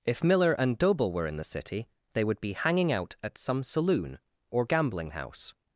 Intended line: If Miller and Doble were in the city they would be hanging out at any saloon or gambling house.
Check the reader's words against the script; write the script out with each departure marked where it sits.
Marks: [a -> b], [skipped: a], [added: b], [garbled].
If Miller and Doble were in the city they would be hanging out at [any -> some] saloon or gambling house.